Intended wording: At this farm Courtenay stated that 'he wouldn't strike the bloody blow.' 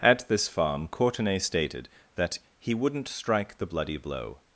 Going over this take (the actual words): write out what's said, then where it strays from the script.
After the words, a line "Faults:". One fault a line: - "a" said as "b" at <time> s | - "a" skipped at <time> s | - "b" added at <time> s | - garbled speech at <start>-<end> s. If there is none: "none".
At this farm Courtenay stated that 'he wouldn't strike the bloody blow.'
Faults:
none